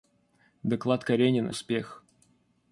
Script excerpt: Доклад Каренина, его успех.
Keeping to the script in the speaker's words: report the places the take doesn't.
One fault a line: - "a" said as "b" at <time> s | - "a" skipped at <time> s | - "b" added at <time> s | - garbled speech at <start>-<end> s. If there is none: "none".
- "его" skipped at 1.5 s